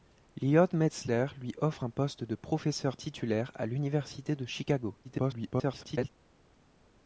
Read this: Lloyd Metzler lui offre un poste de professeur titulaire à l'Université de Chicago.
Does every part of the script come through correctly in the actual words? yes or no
no